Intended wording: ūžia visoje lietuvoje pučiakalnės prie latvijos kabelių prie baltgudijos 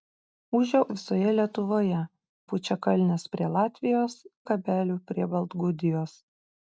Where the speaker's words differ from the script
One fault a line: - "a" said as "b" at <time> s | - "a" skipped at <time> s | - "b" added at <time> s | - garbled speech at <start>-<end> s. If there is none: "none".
none